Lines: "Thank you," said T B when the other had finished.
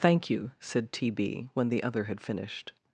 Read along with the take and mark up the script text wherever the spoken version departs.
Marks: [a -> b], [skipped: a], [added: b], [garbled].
"Thank you," said T B when the other had finished.